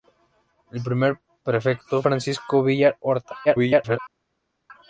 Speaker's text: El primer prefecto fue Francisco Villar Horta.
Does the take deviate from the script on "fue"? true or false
true